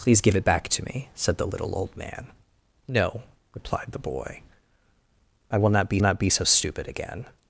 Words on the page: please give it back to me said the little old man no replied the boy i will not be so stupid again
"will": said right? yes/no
yes